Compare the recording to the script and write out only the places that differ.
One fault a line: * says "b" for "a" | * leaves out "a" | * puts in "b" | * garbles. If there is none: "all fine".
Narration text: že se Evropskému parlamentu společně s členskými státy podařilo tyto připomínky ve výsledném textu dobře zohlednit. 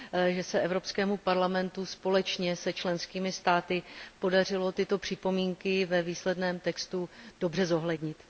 all fine